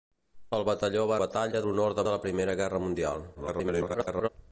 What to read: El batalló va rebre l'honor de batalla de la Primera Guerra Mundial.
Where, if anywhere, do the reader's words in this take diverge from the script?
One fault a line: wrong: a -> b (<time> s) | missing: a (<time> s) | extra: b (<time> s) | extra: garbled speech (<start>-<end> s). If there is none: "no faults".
wrong: rebre -> batalla (1.2 s)
missing: batalla (2.1 s)
extra: garbled speech (3.3-4.3 s)